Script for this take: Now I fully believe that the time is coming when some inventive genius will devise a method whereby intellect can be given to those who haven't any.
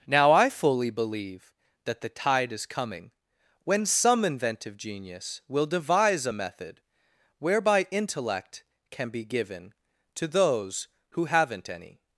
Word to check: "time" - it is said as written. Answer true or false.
false